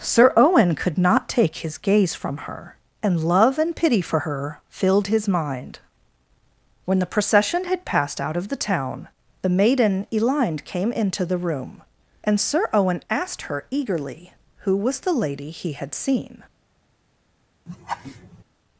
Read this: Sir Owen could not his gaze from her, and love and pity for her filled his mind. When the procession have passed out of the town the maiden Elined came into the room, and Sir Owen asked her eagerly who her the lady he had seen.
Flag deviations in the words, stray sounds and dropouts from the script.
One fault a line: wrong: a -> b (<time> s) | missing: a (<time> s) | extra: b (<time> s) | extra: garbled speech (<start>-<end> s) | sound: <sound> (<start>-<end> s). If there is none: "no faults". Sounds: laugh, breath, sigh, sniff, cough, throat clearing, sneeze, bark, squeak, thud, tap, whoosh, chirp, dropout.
extra: take (1.3 s)
wrong: have -> had (7.6 s)
wrong: her -> was (14.8 s)
sound: laugh (17.7-18.4 s)